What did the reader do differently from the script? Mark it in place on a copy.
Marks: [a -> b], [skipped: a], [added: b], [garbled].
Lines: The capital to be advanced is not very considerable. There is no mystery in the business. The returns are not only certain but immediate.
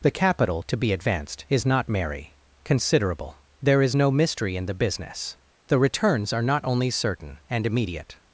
The capital to be advanced is not [very -> merry] considerable. There is no mystery in the business. The returns are not only certain [but -> and] immediate.